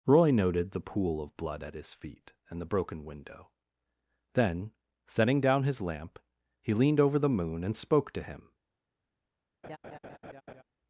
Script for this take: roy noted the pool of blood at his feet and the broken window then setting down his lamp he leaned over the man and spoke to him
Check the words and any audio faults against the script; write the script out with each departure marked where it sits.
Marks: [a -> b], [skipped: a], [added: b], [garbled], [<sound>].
roy noted the pool of blood at his feet and the broken window then setting down his lamp he leaned over the [man -> moon] and spoke to him [laugh]